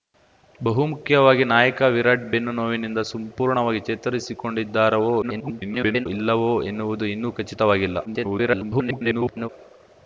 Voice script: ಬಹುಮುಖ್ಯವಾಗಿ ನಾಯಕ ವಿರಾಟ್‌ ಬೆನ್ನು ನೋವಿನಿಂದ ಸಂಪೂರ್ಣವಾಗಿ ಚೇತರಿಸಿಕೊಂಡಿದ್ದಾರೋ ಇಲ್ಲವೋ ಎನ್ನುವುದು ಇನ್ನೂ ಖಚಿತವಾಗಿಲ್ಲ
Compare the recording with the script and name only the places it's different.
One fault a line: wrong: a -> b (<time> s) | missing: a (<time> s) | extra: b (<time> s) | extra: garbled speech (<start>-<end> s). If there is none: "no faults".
extra: garbled speech (5.2-6.1 s)
extra: garbled speech (8.0-9.5 s)